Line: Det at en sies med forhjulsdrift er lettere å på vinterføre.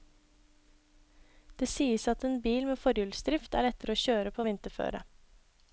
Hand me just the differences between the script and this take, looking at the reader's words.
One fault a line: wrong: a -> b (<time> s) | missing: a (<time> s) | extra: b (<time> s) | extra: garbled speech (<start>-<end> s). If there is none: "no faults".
extra: sies (1.7 s)
wrong: sies -> bil (2.4 s)
extra: kjøre (4.0 s)